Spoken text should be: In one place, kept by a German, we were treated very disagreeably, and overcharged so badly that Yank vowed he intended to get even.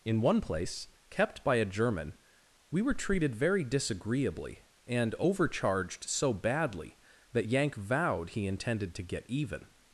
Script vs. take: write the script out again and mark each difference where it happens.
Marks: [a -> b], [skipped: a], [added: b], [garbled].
In one place, kept by a German, we were treated very disagreeably, and overcharged so badly that Yank vowed he intended to get even.